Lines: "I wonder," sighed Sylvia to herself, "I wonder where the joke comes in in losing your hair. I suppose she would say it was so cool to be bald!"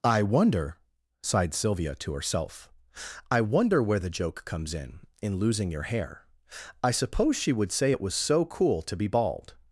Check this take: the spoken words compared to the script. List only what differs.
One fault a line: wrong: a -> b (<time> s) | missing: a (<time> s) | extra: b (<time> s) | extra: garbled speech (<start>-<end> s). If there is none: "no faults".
no faults